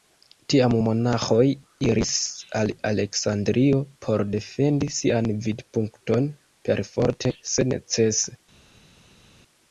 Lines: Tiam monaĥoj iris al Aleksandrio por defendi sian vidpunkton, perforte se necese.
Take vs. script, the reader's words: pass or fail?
pass